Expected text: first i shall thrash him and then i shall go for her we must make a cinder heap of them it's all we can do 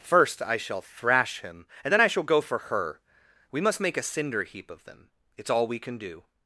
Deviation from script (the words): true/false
false